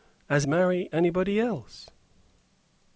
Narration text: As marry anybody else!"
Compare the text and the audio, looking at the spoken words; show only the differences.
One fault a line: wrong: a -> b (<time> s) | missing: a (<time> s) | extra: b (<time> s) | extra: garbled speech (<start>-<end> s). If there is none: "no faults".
no faults